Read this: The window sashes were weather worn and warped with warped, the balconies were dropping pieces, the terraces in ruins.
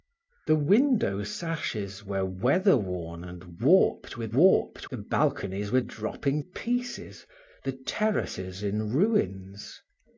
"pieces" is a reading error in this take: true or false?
false